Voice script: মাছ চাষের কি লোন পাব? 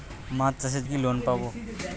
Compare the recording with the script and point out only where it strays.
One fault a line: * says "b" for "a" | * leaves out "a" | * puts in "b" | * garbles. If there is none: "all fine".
all fine